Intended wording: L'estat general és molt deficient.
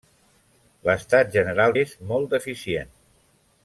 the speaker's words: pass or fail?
pass